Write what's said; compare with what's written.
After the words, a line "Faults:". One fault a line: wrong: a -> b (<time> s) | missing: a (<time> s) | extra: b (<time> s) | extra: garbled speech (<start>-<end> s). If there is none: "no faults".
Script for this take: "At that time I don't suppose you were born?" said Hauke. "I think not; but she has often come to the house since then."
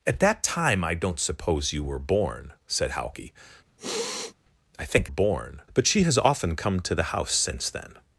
"At that time I don't suppose you were born?" said Hauke. "I think born; but she has often come to the house since then."
Faults:
wrong: not -> born (5.1 s)